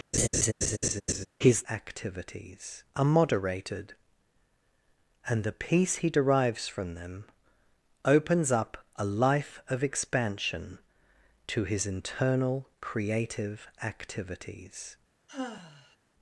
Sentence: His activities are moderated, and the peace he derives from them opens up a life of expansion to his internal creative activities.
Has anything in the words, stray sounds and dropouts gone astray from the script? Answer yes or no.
yes